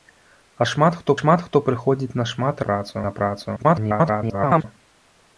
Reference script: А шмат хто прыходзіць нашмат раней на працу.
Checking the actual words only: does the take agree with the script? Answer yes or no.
no